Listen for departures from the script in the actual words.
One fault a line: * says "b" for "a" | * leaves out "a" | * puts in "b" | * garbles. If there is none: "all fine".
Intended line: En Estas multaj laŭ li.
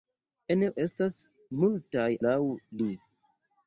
all fine